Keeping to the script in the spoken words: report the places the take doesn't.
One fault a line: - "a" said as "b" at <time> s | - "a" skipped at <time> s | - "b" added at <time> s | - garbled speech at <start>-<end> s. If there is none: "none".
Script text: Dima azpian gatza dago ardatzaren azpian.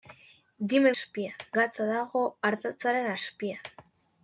none